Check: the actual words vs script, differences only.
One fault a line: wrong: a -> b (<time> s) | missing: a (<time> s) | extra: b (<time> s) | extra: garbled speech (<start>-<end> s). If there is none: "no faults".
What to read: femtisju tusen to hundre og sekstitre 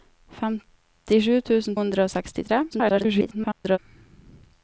missing: to (1.8 s)
extra: garbled speech (2.7-3.8 s)